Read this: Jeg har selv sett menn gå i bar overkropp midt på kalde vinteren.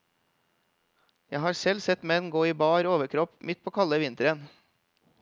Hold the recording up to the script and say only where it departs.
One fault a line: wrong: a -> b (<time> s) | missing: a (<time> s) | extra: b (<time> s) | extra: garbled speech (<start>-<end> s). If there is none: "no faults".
no faults